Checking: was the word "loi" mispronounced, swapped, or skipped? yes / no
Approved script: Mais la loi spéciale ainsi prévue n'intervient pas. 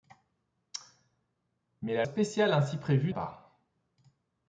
yes